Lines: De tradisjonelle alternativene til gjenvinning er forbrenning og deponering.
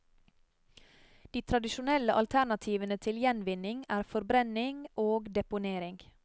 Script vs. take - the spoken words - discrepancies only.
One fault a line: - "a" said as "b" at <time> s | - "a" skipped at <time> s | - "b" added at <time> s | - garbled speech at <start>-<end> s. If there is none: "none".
none